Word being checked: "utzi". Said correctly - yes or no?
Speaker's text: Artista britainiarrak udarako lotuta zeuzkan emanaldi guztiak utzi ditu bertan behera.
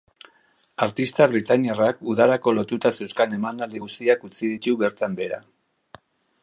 yes